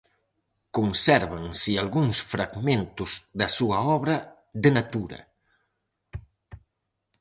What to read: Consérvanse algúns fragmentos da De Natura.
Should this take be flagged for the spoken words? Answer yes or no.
yes